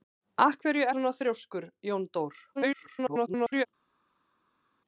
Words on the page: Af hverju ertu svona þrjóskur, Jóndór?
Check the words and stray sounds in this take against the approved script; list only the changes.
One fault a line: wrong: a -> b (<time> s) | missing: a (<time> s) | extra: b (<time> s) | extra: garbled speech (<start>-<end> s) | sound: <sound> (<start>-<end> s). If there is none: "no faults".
missing: ertu (0.9 s)
extra: garbled speech (2.5-3.7 s)